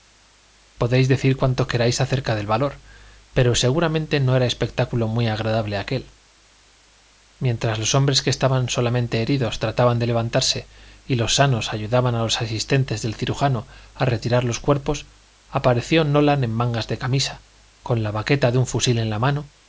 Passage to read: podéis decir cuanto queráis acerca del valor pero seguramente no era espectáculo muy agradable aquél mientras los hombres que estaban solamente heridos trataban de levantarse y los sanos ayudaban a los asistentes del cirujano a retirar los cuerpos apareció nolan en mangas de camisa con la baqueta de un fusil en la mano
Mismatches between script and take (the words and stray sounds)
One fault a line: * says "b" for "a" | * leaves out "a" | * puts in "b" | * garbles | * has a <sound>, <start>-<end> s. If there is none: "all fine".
all fine